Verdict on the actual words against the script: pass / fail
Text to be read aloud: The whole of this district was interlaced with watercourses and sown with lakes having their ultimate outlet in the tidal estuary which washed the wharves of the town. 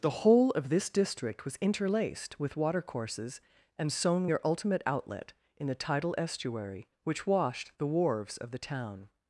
fail